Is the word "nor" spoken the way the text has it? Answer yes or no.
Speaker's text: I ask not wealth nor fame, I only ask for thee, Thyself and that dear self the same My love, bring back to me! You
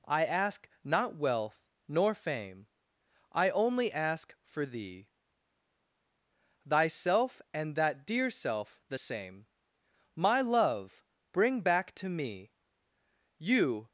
yes